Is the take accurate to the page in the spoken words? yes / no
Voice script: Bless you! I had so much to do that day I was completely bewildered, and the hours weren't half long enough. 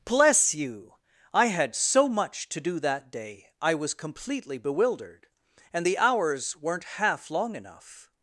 yes